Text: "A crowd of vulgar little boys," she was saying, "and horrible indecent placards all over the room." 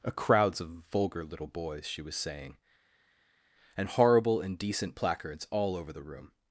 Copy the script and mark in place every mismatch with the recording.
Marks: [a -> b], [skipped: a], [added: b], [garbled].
"A [crowd -> crowds] of vulgar little boys," she was saying, "and horrible indecent placards all over the room."